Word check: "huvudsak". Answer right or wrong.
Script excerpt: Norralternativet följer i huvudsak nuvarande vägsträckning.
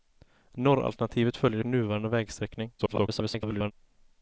wrong